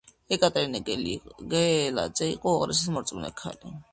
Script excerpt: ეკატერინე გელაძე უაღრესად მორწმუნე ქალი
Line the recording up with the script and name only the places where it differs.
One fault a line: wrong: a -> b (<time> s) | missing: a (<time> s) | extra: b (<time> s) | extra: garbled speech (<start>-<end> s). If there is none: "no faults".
extra: იყო (2.4 s)